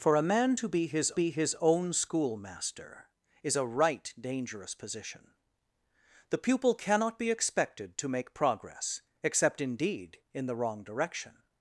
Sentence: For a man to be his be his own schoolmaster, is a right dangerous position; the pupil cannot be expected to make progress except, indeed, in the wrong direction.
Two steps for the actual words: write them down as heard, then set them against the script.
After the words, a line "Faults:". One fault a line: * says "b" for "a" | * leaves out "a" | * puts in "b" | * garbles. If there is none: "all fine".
For a man to be his be his own schoolmaster, is a right dangerous position; the pupil cannot be expected to make progress except, indeed, in the wrong direction.
Faults:
all fine